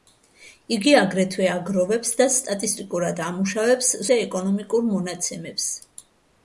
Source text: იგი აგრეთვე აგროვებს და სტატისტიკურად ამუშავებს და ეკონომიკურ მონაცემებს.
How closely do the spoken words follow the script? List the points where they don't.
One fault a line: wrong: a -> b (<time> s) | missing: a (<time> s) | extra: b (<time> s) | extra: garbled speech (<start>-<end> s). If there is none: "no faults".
no faults